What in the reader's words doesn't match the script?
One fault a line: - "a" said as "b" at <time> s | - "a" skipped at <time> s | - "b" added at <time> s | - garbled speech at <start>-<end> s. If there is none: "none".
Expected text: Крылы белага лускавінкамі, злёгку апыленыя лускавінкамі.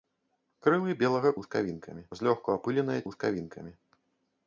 none